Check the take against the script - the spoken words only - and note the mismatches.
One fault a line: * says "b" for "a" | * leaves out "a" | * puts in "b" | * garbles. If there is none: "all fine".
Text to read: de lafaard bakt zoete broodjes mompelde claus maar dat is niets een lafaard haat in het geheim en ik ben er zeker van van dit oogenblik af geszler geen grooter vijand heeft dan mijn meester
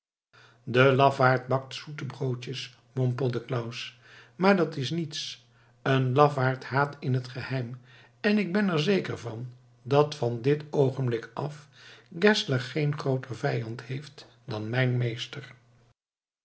* puts in "dat"